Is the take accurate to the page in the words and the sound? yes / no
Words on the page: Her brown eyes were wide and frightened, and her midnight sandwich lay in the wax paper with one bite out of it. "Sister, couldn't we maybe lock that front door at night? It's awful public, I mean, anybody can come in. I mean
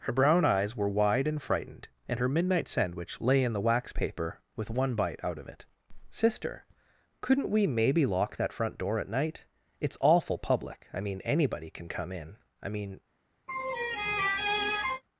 no